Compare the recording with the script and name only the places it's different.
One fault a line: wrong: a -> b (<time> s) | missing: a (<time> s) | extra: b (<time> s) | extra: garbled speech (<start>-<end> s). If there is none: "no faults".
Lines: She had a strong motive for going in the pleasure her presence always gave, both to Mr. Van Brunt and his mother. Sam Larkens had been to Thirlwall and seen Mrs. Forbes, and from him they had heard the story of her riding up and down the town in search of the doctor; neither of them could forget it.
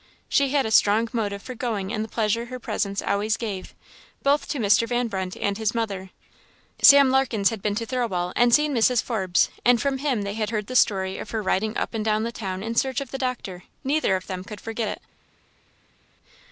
no faults